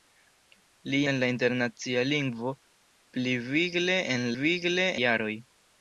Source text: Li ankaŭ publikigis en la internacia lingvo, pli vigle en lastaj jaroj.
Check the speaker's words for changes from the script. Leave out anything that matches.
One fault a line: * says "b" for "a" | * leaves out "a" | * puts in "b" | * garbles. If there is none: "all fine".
* leaves out "ankaŭ publikigis"
* says "vigle" for "lastaj"